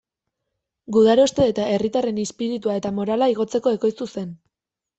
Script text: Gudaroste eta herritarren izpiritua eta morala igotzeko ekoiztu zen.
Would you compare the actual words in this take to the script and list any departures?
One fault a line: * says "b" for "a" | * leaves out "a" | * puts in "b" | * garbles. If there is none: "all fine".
all fine